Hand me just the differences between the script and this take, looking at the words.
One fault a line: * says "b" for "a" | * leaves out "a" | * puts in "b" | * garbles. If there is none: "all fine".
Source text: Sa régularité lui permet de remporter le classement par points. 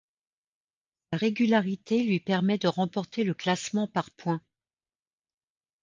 all fine